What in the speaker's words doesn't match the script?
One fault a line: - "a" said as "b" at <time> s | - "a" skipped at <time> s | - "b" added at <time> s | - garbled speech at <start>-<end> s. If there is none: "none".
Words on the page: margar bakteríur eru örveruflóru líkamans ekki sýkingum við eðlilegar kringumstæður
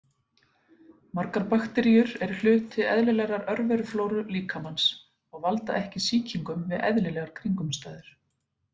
- "hluti eðlilegrar" added at 2.4 s
- "og valda" added at 5.3 s